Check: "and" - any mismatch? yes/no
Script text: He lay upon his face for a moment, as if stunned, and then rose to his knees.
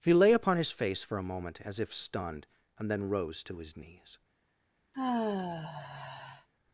no